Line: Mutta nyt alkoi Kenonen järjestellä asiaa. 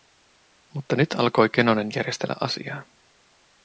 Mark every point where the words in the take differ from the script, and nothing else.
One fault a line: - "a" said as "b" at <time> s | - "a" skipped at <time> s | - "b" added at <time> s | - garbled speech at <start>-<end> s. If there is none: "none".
none